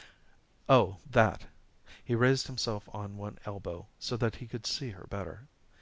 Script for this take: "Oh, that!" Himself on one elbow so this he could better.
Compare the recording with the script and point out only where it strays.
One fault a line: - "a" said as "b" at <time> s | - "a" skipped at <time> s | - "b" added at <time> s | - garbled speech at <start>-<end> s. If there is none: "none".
- "He raised" added at 2.0 s
- "this" said as "that" at 4.2 s
- "see her" added at 4.7 s